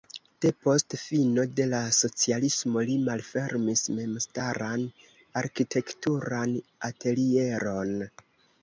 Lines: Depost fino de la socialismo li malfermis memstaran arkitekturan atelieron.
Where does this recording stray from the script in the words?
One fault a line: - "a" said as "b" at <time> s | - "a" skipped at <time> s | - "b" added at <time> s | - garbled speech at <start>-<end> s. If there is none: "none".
none